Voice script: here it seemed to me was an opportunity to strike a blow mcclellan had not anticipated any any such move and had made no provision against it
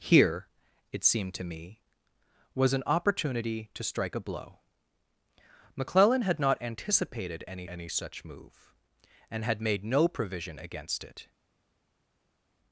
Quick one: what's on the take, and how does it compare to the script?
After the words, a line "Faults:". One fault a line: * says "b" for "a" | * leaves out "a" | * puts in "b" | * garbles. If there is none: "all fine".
here it seemed to me was an opportunity to strike a blow mcclellan had not anticipated any any such move and had made no provision against it
Faults:
all fine